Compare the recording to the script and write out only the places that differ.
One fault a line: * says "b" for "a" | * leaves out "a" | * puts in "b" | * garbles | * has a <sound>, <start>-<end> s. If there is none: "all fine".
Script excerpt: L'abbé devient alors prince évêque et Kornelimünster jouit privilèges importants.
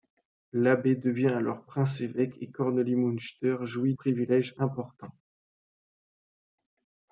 all fine